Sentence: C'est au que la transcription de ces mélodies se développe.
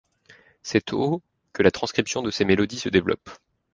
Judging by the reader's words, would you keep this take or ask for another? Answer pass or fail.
pass